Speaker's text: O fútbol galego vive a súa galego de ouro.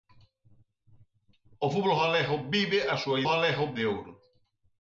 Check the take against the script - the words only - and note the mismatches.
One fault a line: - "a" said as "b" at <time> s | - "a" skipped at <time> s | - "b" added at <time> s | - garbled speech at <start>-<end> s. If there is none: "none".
none